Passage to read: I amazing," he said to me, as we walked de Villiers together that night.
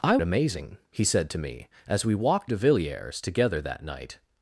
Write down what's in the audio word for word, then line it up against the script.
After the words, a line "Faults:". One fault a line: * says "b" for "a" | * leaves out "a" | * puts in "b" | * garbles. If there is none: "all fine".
I amazing," he said to me, as we walked de Villiers together that night.
Faults:
all fine